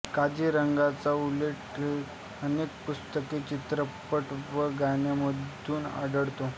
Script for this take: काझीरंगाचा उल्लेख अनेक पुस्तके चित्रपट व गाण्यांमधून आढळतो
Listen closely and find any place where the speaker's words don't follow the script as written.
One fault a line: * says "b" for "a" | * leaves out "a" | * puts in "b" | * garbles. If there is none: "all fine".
all fine